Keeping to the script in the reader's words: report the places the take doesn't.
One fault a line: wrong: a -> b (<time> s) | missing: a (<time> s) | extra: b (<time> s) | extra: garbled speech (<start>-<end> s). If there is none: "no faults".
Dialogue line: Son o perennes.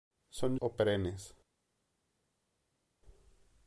no faults